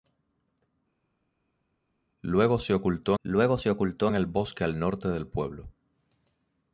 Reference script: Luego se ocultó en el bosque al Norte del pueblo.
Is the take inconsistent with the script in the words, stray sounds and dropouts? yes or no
yes